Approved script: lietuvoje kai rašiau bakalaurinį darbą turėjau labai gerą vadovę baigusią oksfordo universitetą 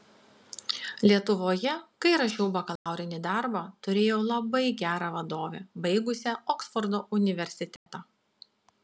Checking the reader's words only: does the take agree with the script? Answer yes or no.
yes